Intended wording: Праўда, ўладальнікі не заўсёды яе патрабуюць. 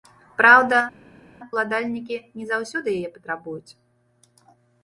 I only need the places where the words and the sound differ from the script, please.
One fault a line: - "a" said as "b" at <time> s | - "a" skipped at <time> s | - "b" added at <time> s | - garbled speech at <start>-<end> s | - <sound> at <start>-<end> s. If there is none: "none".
none